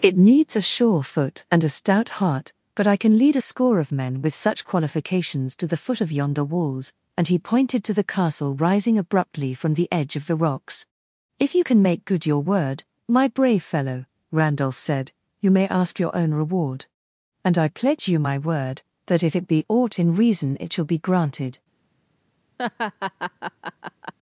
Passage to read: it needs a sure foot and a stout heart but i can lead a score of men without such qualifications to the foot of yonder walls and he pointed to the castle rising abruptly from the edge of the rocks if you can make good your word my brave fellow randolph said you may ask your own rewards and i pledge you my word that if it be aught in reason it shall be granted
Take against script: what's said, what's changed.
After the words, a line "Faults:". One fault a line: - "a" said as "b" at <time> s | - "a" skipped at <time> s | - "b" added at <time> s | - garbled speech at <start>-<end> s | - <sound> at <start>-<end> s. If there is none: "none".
it needs a sure foot and a stout heart but i can lead a score of men with such qualifications to the foot of yonder walls and he pointed to the castle rising abruptly from the edge of the rocks if you can make good your word my brave fellow randolph said you may ask your own reward and i pledge you my word that if it be aught in reason it shall be granted
Faults:
- "without" said as "with" at 4.2 s
- "rewards" said as "reward" at 16.3 s
- laugh at 22.6-24.1 s